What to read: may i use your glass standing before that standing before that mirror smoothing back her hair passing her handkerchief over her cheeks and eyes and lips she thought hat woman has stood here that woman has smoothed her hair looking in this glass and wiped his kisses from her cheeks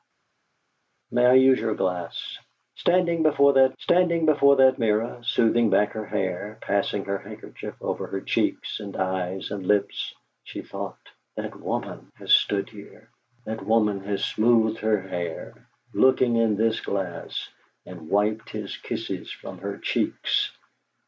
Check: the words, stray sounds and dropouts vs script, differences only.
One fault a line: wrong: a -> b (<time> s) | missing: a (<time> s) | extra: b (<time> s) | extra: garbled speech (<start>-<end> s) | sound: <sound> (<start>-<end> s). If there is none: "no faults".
no faults